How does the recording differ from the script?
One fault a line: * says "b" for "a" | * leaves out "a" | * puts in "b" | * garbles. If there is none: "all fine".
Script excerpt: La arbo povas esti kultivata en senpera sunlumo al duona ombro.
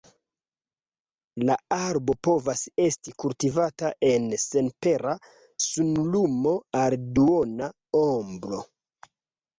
all fine